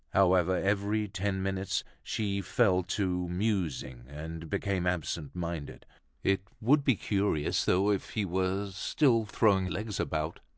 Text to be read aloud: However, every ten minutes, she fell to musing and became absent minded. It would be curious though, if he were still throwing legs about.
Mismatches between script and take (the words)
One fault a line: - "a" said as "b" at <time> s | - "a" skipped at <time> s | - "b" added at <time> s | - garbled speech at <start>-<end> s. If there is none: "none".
none